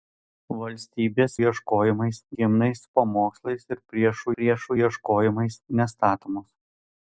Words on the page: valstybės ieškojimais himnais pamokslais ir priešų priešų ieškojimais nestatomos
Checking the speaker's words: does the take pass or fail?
pass